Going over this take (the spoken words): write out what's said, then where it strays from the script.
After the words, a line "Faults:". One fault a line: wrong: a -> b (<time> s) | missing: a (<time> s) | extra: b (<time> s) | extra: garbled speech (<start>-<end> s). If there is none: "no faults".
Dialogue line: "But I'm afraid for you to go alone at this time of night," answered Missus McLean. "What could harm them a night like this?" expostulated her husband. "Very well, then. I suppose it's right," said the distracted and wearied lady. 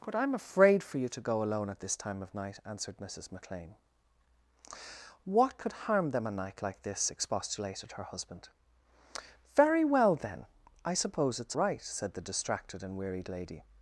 "But I'm afraid for you to go alone at this time of night," answered Missus McLean. "What could harm them a night like this?" expostulated her husband. "Very well, then. I suppose it's right," said the distracted and wearied lady.
Faults:
no faults